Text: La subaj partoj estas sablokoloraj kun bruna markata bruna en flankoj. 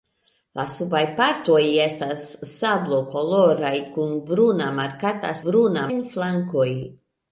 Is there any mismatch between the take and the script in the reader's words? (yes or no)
no